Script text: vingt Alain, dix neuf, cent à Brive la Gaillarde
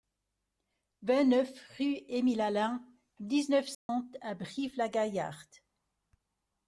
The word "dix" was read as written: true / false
true